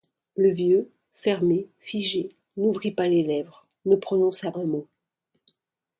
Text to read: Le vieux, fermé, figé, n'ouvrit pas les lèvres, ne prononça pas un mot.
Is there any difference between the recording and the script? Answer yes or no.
yes